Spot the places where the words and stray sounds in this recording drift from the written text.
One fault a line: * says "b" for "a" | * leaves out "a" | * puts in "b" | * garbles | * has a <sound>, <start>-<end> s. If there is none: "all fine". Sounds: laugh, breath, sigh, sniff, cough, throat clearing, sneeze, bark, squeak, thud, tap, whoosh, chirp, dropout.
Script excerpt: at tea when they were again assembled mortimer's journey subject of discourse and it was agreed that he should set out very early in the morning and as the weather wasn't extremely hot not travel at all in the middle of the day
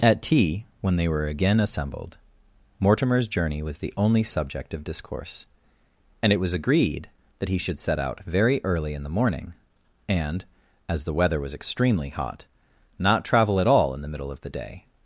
* puts in "was the only"
* says "was" for "wasn't"